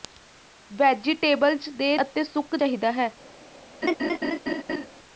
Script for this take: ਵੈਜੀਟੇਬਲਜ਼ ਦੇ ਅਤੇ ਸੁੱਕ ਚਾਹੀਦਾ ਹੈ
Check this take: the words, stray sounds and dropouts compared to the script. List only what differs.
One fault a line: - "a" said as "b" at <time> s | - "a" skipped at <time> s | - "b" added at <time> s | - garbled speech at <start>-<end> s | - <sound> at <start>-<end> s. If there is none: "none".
- laugh at 3.8-4.9 s